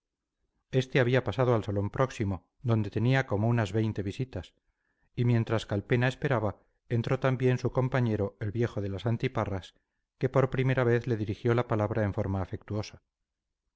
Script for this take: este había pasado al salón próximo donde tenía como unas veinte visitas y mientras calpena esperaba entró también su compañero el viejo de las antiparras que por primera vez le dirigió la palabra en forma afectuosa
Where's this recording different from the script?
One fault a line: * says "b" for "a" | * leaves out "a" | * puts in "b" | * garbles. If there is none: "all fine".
all fine